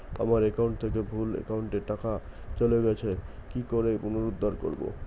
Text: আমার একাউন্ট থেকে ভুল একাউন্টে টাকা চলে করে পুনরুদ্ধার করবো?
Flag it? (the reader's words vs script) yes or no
yes